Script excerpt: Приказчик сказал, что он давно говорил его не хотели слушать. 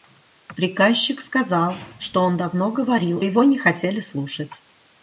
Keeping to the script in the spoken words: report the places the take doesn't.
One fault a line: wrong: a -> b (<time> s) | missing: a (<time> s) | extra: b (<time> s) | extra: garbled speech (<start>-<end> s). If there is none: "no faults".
no faults